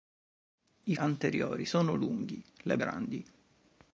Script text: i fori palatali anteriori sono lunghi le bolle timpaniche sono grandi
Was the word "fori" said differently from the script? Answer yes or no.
yes